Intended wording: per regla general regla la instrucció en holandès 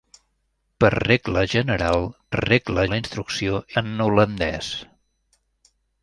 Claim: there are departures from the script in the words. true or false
false